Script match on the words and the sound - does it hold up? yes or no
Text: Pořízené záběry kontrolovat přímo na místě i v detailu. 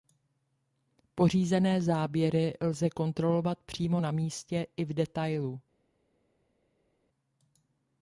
no